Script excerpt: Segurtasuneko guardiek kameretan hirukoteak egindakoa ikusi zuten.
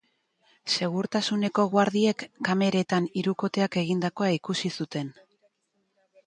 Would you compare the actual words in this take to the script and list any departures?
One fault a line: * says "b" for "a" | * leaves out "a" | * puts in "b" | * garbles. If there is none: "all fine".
all fine